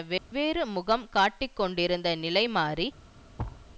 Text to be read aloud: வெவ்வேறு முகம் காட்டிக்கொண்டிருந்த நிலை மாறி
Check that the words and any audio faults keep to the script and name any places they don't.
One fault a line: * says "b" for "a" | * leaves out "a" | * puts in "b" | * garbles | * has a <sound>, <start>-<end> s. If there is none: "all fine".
* has a dropout, 0.2-0.3 s
* has a thud, 3.4-3.6 s